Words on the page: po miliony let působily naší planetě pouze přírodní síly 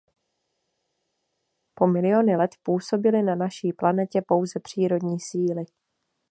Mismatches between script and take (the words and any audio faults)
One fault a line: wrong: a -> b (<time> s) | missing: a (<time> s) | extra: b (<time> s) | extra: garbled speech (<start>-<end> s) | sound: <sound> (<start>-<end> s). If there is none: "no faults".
extra: na (3.2 s)